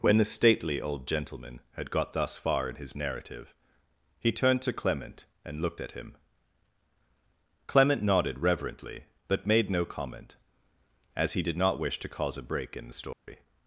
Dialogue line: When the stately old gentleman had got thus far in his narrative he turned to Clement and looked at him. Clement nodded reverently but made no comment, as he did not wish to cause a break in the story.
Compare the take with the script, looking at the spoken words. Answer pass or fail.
pass